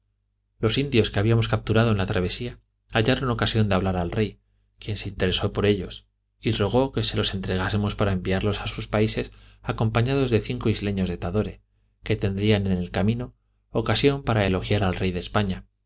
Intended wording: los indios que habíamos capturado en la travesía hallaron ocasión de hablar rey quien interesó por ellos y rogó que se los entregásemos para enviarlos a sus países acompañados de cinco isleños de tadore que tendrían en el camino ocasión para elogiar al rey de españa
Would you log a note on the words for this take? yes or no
yes